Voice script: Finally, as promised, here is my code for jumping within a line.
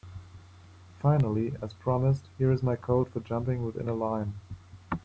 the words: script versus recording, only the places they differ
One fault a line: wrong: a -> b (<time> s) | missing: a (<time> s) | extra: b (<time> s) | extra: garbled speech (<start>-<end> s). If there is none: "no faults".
no faults